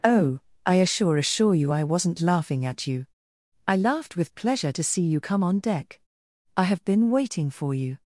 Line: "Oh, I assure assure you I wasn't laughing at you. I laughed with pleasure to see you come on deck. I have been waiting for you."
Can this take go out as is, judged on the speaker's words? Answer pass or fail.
pass